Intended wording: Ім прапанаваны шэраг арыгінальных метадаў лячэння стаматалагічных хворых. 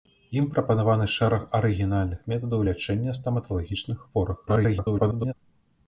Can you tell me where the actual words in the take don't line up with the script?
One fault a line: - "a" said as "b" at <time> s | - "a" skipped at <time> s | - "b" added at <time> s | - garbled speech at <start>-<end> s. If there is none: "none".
- garbled speech at 4.5-5.3 s